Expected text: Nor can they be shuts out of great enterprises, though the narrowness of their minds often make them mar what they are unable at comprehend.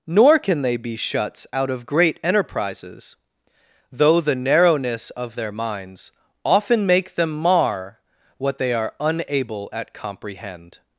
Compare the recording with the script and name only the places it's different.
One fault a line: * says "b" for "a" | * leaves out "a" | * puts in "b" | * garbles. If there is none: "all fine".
all fine